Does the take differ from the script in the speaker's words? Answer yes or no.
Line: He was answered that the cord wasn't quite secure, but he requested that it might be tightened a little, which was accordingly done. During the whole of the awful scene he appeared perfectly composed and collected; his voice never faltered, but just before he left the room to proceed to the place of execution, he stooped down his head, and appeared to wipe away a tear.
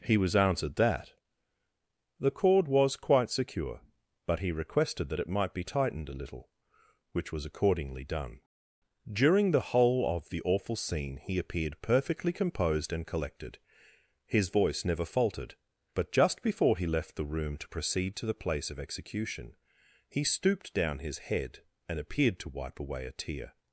yes